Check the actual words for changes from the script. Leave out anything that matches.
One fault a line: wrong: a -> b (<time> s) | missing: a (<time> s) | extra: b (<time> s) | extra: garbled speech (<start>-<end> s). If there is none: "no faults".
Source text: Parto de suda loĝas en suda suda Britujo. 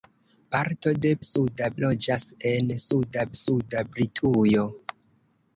no faults